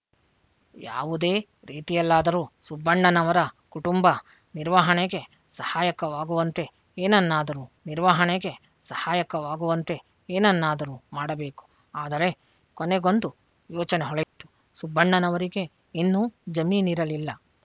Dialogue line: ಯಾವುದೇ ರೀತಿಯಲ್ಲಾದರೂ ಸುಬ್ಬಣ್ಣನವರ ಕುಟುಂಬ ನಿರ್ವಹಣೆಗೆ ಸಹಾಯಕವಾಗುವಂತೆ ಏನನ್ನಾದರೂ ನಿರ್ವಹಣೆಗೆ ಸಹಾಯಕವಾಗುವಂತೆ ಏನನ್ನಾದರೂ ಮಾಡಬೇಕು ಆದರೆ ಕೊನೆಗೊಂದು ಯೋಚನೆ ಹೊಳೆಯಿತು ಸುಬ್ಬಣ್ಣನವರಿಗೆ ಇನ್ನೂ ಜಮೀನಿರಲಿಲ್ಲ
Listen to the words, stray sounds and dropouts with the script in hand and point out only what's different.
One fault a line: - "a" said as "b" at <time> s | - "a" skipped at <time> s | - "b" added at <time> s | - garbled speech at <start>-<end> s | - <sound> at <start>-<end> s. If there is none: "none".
- dropout at 14.2-14.4 s